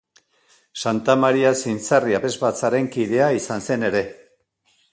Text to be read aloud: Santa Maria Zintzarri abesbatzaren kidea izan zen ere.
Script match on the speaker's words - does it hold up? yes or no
yes